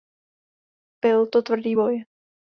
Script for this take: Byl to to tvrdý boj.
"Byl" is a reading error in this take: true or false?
false